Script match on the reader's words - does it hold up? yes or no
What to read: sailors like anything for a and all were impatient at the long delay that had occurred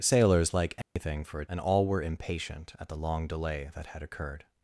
yes